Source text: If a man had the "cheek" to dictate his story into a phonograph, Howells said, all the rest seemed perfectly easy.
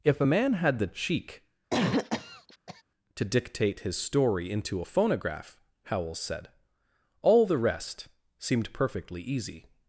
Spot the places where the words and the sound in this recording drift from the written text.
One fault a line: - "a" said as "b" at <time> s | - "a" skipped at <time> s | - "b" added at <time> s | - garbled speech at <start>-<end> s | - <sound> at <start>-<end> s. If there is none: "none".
- cough at 1.7-2.8 s